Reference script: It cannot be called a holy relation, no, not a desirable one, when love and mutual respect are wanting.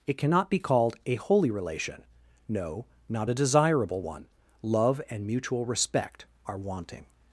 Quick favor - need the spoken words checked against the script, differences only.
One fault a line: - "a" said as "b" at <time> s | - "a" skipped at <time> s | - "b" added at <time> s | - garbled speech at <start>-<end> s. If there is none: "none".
- "when" skipped at 4.3 s